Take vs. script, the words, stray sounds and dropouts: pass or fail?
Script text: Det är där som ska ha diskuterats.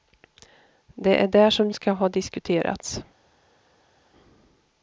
pass